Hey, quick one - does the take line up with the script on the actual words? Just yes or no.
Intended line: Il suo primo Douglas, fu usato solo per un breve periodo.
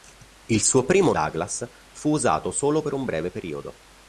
yes